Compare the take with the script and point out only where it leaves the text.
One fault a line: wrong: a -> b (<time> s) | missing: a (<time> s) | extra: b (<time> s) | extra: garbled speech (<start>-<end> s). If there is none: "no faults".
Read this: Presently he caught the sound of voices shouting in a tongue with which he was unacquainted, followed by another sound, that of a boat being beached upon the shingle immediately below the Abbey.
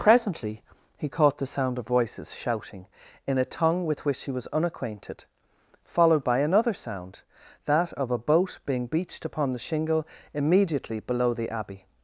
no faults